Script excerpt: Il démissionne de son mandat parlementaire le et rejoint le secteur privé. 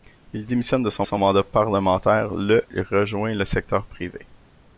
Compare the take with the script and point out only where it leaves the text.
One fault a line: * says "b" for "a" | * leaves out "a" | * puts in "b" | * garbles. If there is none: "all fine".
* puts in "son"
* leaves out "et"